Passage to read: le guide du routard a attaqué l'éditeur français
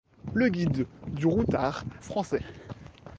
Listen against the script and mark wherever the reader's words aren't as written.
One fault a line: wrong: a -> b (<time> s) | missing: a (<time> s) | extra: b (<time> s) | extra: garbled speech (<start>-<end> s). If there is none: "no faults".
missing: a attaqué l'éditeur (1.8 s)